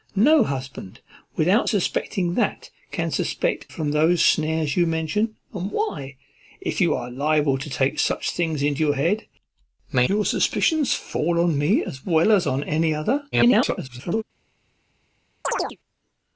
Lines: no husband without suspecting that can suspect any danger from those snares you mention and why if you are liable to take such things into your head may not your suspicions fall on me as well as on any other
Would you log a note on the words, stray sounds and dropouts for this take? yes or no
yes